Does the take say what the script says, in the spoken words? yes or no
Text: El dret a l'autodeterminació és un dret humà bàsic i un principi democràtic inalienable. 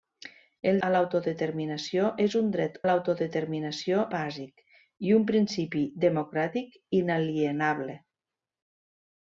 no